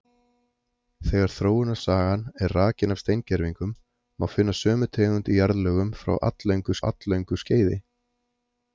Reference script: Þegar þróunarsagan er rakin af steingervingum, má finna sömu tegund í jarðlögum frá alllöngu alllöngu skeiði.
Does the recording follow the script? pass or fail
pass